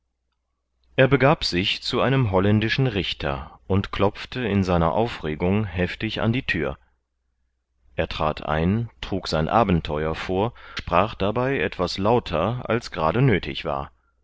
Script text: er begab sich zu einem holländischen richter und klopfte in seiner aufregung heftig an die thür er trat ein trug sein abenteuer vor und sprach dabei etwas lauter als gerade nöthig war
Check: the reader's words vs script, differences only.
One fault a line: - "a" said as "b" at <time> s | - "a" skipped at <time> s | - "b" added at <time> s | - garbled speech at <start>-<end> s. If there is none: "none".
- "und" skipped at 10.5 s